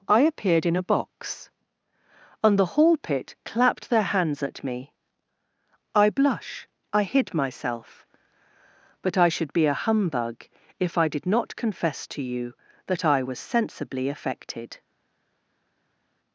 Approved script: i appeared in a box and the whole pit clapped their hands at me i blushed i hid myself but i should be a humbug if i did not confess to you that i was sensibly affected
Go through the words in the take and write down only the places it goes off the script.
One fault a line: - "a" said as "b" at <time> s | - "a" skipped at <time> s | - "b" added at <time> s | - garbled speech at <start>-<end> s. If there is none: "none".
- "whole" said as "hall" at 2.8 s
- "blushed" said as "blush" at 6.1 s